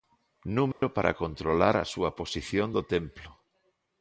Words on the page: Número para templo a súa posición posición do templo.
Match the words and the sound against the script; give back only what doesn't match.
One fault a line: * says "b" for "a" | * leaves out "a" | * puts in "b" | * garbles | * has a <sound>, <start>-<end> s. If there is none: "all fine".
* has a dropout, 0.7-0.8 s
* says "controlar" for "templo"
* leaves out "posición"